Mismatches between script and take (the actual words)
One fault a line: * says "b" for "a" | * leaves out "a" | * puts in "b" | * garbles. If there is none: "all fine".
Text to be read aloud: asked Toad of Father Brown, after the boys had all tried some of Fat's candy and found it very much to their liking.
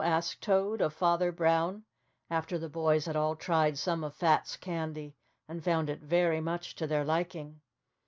all fine